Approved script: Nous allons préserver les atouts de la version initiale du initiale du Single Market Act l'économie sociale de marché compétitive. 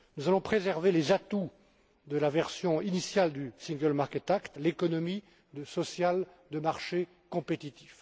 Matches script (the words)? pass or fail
fail